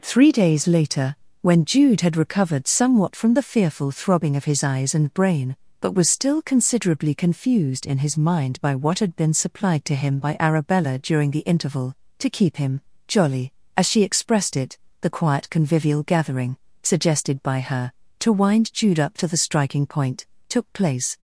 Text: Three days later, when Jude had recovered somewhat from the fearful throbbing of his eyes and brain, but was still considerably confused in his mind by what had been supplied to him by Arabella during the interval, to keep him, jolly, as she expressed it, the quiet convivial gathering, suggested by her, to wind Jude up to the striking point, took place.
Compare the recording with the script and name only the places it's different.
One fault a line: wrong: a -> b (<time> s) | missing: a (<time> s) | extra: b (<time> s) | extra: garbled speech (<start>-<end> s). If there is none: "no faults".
no faults